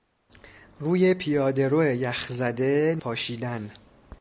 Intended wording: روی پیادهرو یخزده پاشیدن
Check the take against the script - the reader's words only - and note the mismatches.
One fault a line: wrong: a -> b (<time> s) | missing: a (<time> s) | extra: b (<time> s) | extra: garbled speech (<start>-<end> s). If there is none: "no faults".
no faults